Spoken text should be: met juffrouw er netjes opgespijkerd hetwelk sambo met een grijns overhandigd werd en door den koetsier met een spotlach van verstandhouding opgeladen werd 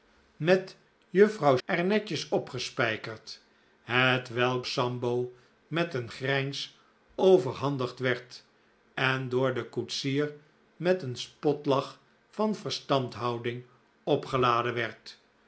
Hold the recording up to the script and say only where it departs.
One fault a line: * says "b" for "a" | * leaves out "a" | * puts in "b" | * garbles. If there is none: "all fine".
all fine